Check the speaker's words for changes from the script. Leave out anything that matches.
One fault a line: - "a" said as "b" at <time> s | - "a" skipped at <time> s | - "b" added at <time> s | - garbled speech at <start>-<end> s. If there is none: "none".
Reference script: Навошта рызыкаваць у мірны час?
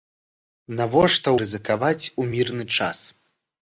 none